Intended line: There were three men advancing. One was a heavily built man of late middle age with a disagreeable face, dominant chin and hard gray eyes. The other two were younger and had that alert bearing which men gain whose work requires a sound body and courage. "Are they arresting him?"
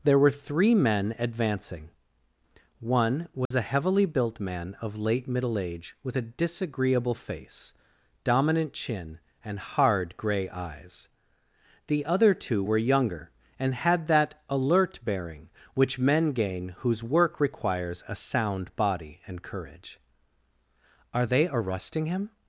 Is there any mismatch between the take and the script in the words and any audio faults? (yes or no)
yes